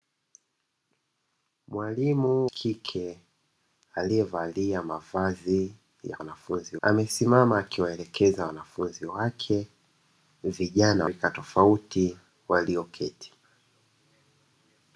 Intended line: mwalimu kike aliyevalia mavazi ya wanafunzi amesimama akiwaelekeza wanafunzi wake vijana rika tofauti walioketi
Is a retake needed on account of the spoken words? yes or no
no